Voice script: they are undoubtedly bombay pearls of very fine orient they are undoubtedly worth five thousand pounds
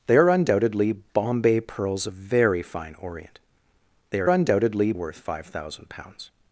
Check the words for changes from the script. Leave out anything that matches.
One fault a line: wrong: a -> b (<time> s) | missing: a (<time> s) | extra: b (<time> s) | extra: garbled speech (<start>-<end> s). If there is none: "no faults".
no faults